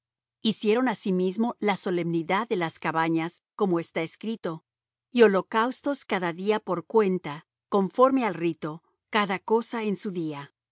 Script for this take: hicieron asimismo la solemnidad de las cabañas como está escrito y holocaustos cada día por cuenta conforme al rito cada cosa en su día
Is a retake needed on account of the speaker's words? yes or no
no